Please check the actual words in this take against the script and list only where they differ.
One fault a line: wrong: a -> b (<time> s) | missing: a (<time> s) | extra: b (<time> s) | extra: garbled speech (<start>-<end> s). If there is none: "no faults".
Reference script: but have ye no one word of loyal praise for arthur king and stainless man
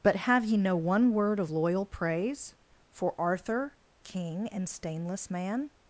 no faults